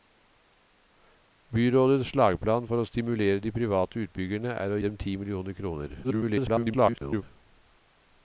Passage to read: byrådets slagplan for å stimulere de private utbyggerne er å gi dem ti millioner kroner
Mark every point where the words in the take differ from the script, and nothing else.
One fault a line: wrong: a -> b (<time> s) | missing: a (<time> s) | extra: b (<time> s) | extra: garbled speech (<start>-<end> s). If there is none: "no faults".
missing: gi (4.8 s)
extra: garbled speech (6.0-7.2 s)